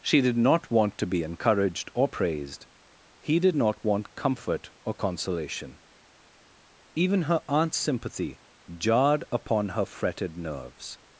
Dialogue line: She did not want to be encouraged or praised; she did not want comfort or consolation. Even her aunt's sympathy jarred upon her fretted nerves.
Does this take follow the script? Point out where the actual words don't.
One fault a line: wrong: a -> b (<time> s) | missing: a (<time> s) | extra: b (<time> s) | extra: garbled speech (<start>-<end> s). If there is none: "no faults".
wrong: she -> he (3.2 s)